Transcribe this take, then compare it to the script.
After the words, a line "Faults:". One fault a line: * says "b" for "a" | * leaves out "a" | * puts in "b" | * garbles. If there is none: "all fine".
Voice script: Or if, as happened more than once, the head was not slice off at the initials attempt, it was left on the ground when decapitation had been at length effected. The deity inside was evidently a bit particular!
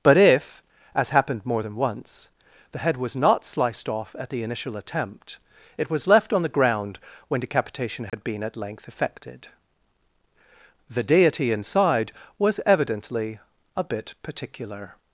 But if, as happened more than once, the head was not sliced off at the initial attempt, it was left on the ground when decapitation had been at length effected. The deity inside was evidently a bit particular!
Faults:
* says "But" for "Or"
* says "sliced" for "slice"
* says "initial" for "initials"